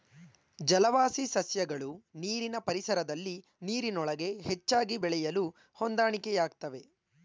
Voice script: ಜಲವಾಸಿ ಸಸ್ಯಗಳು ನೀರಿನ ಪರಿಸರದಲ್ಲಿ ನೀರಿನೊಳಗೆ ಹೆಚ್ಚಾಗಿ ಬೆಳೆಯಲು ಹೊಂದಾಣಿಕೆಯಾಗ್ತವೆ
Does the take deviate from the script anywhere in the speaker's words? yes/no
no